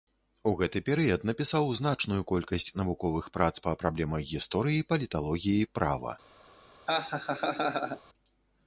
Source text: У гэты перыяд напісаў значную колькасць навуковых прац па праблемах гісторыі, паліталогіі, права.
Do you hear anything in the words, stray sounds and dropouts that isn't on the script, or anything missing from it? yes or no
yes